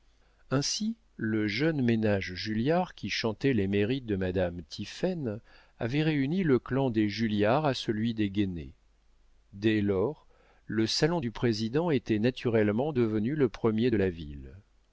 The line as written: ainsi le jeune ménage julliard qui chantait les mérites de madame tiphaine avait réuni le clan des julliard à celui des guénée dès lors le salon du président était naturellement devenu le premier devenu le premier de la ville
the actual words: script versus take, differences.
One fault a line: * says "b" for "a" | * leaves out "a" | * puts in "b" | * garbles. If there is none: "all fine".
* leaves out "devenu le premier"